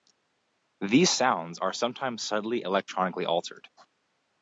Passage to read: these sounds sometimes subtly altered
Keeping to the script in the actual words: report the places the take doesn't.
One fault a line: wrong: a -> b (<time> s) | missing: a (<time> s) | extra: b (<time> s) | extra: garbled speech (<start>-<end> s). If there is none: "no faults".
extra: are (1.6 s)
extra: electronically (2.6 s)